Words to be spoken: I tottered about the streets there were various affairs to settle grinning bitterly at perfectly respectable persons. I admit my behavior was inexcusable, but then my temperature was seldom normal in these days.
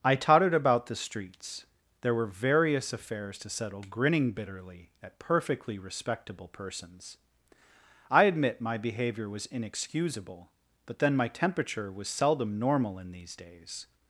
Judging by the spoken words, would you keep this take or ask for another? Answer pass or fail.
pass